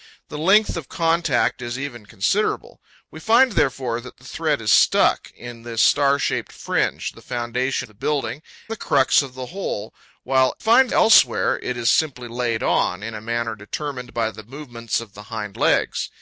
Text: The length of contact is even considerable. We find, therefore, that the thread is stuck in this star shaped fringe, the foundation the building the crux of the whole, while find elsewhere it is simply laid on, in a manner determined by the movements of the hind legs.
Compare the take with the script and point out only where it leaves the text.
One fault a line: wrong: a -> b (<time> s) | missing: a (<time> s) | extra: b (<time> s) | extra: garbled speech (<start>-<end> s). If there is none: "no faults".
no faults